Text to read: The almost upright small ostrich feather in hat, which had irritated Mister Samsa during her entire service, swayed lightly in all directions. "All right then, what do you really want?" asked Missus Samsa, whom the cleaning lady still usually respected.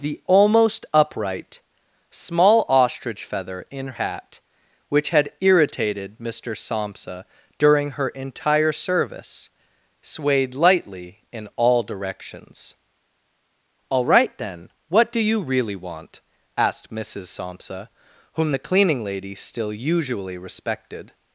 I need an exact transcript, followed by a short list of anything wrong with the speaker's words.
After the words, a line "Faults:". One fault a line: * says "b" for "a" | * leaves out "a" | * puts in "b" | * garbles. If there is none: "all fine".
The almost upright small ostrich feather in hat, which had irritated Mister Samsa during her entire service, swayed lightly in all directions. "All right then, what do you really want?" asked Missus Samsa, whom the cleaning lady still usually respected.
Faults:
all fine